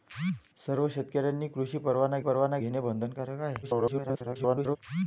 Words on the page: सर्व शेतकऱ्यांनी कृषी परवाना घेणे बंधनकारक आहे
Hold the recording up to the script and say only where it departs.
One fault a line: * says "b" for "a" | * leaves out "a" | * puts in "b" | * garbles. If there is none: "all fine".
* puts in "परवाना"
* garbles